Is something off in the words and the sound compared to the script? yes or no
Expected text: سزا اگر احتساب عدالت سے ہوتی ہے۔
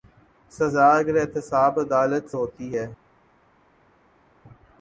yes